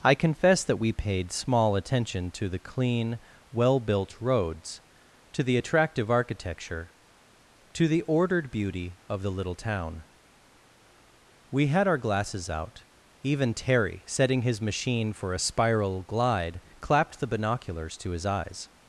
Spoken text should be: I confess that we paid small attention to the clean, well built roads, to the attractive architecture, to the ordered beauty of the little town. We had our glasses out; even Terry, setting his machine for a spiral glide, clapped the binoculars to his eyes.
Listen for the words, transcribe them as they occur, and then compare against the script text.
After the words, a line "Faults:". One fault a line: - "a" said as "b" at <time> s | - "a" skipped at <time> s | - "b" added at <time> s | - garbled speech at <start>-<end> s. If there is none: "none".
I confess that we paid small attention to the clean, well built roads, to the attractive architecture, to the ordered beauty of the little town. We had our glasses out; even Terry, setting his machine for a spiral glide, clapped the binoculars to his eyes.
Faults:
none